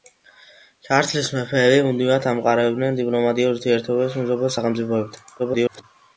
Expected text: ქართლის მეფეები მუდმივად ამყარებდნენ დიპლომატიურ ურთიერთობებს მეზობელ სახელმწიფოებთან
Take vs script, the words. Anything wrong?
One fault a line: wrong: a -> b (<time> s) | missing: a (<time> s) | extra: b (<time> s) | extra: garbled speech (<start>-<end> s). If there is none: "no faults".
extra: garbled speech (5.4-5.8 s)